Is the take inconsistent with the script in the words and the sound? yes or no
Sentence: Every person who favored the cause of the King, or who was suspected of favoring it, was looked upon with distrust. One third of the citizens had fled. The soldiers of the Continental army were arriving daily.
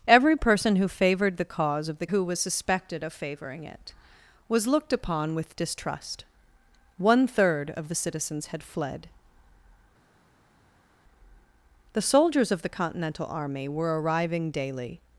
yes